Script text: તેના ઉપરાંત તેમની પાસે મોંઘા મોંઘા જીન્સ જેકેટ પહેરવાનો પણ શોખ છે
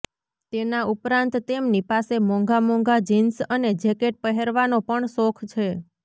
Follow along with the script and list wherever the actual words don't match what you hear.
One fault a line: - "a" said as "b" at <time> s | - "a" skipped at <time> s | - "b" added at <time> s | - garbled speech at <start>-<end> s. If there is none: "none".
- "અને" added at 3.5 s